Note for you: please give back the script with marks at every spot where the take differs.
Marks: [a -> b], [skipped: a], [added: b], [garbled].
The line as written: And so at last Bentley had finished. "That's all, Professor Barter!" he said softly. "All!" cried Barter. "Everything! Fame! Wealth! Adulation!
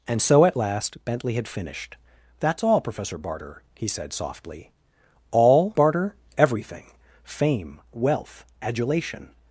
And so at last Bentley had finished. "That's all, Professor Barter!" he said softly. "All!" [skipped: cried] Barter. "Everything! Fame! Wealth! Adulation!